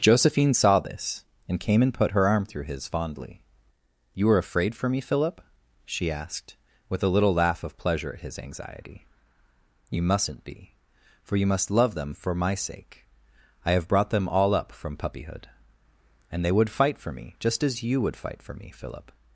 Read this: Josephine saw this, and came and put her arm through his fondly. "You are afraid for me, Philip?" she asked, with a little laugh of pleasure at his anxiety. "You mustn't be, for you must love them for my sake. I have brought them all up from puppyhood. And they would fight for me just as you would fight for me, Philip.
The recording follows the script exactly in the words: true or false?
true